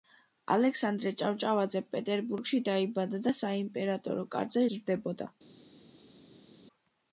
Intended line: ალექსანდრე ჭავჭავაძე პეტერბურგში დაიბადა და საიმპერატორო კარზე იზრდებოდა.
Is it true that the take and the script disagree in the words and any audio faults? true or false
false